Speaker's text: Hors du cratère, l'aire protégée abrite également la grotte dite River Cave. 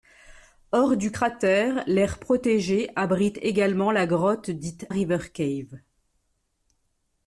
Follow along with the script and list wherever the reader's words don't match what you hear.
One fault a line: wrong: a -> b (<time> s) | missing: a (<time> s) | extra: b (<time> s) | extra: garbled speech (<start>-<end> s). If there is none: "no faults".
no faults